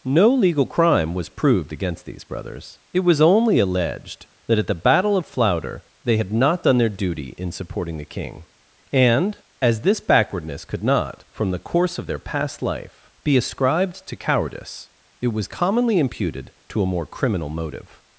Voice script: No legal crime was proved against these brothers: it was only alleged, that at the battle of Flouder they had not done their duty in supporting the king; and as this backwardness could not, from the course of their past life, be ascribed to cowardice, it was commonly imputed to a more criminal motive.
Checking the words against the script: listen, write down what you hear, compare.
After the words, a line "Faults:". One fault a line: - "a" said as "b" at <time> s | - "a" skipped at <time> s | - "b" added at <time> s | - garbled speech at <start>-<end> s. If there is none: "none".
No legal crime was proved against these brothers: it was only alleged, that at the battle of Flouder they had not done their duty in supporting the king; and as this backwardness could not, from the course of their past life, be ascribed to cowardice, it was commonly imputed to a more criminal motive.
Faults:
none